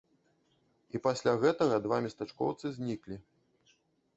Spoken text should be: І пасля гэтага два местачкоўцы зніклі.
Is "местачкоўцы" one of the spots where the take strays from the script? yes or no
no